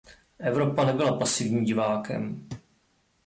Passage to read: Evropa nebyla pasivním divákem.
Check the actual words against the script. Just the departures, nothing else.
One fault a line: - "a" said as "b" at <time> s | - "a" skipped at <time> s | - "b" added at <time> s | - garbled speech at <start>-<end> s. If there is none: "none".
none